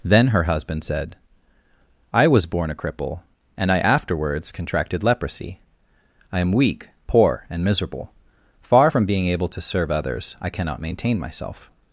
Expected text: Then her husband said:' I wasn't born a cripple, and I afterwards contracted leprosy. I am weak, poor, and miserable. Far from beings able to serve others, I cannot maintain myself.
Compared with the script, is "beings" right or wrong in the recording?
wrong